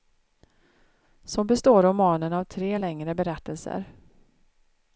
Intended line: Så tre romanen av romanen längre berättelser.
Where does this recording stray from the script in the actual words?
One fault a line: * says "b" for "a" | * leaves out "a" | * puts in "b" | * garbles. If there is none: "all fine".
* says "består" for "tre"
* says "tre" for "romanen"